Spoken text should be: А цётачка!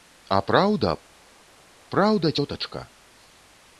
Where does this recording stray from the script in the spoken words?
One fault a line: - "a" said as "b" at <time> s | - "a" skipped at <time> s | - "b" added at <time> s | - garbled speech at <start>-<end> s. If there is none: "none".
- "праўда праўда" added at 0.5 s